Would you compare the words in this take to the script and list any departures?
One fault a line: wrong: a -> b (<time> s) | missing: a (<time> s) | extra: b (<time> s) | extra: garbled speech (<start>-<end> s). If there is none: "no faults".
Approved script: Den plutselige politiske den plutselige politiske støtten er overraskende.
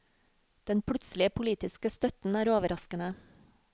missing: den plutselige politiske (1.9 s)